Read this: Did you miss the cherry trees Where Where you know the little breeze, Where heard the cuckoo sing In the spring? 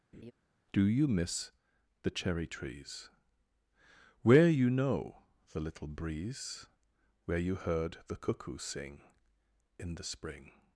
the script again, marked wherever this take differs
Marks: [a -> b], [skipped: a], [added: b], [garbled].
[Did -> Do] you miss the cherry trees Where [skipped: Where] you know the little breeze, Where [added: you] heard the cuckoo sing In the spring?